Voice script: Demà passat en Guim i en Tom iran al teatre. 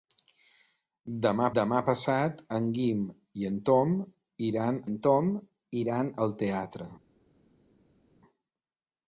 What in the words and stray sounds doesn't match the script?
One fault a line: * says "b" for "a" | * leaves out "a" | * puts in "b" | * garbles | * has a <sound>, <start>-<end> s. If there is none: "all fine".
* puts in "demà"
* puts in "en Tom iran"